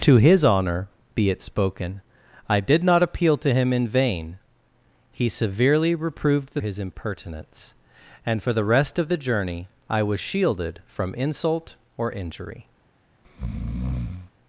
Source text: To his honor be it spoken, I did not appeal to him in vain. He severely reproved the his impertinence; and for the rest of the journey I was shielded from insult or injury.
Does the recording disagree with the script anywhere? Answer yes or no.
no